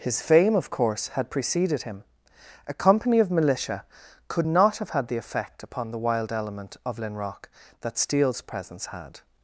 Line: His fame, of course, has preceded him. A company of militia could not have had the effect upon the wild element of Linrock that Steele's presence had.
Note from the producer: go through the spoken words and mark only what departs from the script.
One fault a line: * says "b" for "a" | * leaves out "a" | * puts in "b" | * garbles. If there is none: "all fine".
* says "had" for "has"